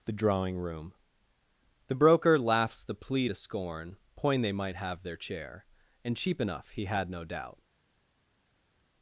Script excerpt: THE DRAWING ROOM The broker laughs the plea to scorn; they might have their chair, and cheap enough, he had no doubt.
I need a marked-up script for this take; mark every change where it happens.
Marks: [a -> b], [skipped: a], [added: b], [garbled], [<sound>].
THE DRAWING ROOM The broker laughs the plea to scorn; [added: point] they might have their chair, and cheap enough, he had no doubt.